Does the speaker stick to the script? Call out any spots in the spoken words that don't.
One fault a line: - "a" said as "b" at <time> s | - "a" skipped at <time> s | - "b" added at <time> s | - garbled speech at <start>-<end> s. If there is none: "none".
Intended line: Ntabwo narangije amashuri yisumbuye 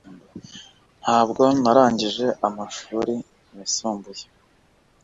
none